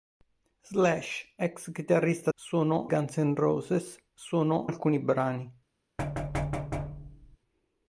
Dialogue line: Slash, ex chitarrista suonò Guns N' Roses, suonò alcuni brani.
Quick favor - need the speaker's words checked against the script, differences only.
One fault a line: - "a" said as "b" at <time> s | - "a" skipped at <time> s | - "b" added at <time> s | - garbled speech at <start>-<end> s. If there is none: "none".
none